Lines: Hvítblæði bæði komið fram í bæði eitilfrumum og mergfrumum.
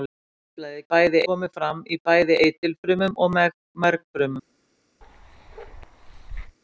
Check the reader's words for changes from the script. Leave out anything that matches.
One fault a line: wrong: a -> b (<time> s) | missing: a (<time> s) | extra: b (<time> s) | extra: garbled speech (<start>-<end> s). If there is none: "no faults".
no faults